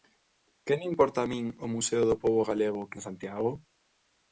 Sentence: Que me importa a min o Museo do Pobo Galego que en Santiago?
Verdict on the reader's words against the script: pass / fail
pass